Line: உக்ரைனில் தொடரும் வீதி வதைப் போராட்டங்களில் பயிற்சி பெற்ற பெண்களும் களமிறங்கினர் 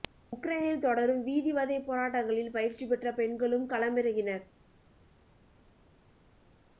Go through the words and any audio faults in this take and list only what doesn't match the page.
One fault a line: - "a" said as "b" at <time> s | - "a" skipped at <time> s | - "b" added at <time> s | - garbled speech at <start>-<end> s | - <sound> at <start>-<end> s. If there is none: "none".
none